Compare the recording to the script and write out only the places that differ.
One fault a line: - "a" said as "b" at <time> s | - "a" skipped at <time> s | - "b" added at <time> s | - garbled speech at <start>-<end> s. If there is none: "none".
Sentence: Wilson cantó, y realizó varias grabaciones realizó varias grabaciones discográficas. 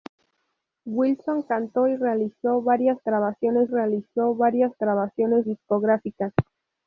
none